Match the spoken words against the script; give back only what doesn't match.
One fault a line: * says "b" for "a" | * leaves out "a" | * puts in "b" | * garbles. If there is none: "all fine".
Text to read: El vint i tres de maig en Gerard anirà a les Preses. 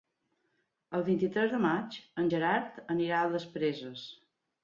all fine